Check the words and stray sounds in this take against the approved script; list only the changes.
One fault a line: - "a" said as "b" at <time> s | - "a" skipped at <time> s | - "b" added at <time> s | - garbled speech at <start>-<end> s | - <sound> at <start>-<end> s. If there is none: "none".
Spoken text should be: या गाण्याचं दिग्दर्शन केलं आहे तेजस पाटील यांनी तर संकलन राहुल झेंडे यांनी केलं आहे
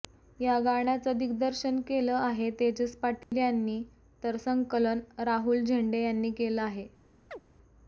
- dropout at 3.2-3.3 s
- chirp at 7.3-7.4 s